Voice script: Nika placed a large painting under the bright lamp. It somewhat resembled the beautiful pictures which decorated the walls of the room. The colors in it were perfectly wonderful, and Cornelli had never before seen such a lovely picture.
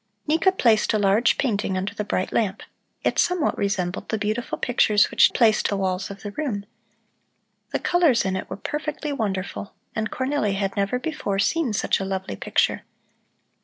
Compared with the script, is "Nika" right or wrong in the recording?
right